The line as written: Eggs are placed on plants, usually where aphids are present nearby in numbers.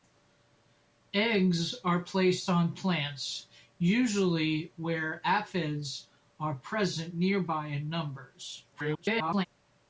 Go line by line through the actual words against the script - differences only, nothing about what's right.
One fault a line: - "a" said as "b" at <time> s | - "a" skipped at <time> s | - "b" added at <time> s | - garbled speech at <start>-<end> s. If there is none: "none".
- garbled speech at 8.7-9.5 s